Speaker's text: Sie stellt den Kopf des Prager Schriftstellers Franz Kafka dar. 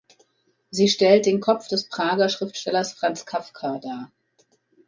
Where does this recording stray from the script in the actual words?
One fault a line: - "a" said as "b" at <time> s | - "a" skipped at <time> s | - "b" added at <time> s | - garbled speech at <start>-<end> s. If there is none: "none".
none